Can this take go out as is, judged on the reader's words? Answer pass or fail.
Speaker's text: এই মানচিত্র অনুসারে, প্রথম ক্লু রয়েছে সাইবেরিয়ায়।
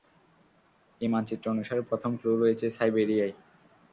pass